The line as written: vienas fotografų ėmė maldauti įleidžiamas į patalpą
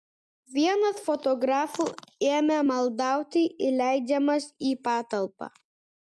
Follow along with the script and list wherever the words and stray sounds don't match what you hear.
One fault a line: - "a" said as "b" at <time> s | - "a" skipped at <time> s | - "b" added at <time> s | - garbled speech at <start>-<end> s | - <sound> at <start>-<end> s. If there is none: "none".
none